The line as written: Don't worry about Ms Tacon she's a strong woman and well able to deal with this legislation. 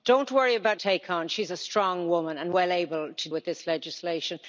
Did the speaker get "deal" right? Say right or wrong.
wrong